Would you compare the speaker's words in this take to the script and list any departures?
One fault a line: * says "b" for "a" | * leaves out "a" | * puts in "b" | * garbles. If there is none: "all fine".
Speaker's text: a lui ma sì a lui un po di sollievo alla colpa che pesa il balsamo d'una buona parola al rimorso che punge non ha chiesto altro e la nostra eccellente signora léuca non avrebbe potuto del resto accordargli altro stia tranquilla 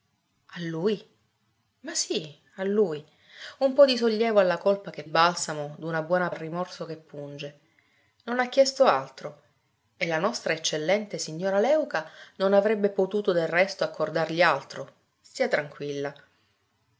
* leaves out "pesa il"
* leaves out "parola"